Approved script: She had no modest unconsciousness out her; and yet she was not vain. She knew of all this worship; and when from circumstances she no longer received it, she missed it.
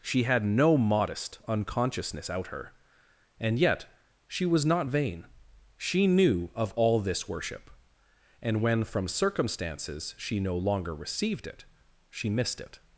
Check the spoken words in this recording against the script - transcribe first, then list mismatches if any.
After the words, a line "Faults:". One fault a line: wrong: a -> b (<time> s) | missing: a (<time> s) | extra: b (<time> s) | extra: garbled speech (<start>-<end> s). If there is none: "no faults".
She had no modest unconsciousness out her; and yet she was not vain. She knew of all this worship; and when from circumstances she no longer received it, she missed it.
Faults:
no faults